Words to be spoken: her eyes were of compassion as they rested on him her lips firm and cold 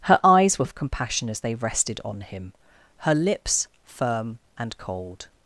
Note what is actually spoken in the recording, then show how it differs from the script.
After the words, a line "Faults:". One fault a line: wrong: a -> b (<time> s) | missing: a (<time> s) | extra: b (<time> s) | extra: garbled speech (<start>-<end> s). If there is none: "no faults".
her eyes were of compassion as they rested on him her lips firm and cold
Faults:
no faults